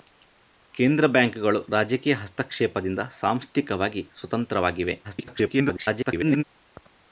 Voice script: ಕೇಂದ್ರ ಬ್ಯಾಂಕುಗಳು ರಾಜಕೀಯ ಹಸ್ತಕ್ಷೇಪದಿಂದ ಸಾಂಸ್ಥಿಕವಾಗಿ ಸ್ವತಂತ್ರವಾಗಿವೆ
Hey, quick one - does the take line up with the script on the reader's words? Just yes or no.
no